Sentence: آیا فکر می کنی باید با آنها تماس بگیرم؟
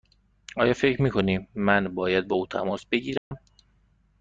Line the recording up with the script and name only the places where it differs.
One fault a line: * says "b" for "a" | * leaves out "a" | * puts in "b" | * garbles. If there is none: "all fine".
* puts in "من"
* says "او" for "آنها"